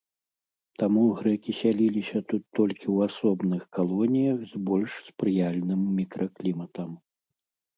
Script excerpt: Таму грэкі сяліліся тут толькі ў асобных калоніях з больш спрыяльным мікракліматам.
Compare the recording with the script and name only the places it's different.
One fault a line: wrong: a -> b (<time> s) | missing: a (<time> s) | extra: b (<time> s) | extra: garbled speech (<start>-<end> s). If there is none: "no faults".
no faults